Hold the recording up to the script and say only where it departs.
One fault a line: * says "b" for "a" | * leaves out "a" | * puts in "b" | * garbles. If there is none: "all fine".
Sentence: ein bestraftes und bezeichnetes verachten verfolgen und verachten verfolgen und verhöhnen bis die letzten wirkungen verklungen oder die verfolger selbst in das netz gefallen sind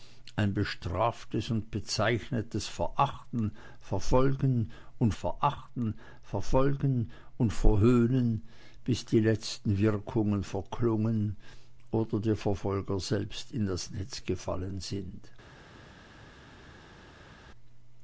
all fine